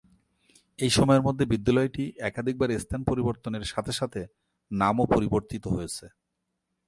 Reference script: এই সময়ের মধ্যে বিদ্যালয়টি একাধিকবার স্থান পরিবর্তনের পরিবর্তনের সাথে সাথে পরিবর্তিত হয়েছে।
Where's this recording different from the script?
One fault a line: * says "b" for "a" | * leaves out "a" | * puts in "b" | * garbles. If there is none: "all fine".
* says "সাথে" for "পরিবর্তনের"
* says "নামও" for "সাথে"